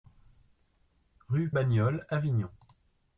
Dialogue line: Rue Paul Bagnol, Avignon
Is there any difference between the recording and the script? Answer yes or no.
yes